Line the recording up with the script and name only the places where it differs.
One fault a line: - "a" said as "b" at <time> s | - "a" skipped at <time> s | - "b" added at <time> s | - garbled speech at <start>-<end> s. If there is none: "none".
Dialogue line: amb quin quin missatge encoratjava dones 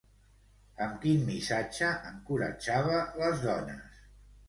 - "quin" skipped at 1.2 s
- "les" added at 3.2 s